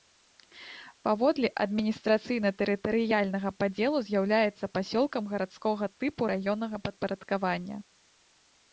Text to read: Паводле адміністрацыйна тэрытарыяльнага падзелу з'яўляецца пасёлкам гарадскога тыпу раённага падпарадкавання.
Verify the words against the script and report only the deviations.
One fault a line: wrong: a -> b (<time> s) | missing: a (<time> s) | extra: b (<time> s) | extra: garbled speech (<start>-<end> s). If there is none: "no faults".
no faults